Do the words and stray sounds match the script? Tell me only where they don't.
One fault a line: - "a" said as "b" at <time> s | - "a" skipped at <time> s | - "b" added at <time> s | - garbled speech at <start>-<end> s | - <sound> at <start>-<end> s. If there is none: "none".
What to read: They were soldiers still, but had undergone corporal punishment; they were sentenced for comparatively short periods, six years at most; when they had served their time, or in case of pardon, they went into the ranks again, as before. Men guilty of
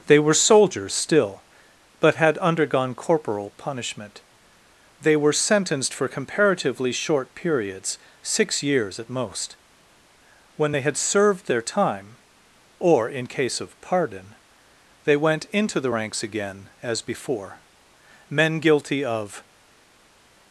none